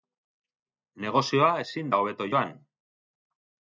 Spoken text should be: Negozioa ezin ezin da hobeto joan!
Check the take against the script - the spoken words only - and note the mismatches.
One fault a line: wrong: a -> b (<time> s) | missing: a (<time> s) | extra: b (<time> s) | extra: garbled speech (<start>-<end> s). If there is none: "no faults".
missing: ezin (1.9 s)